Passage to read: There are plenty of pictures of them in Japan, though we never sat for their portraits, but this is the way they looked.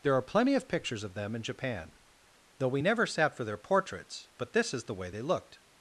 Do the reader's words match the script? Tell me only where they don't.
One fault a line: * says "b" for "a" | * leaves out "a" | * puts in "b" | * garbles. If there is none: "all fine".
all fine